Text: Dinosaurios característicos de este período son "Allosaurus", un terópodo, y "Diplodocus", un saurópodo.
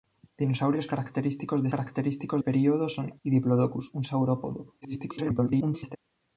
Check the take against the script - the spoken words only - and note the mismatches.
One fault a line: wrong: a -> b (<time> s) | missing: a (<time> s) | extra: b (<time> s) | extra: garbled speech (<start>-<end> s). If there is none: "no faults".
wrong: este -> característicos (1.7 s)
missing: Allosaurus un terópodo (3.2 s)
extra: garbled speech (4.8-6.0 s)